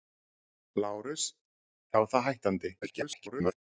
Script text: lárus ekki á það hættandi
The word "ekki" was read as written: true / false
false